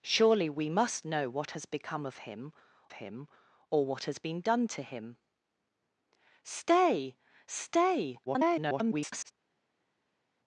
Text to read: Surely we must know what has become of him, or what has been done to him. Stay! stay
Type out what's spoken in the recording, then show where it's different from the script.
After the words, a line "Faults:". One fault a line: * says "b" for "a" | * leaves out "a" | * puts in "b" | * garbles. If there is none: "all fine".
Surely we must know what has become of him him, or what has been done to him. Stay! stay [garbled]
Faults:
* puts in "him"
* garbles